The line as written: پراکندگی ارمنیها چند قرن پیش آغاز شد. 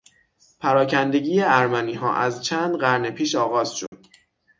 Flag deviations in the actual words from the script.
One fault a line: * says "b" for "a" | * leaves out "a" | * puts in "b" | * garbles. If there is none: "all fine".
* puts in "از"